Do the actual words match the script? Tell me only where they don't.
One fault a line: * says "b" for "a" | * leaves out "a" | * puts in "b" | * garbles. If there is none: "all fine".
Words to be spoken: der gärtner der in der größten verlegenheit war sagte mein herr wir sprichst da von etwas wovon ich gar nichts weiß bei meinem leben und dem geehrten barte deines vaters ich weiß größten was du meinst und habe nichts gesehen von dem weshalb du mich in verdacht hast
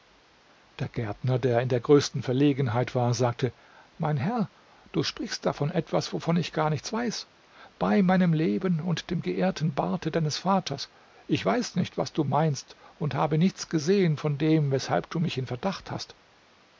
* says "du" for "wir"
* says "nicht" for "größten"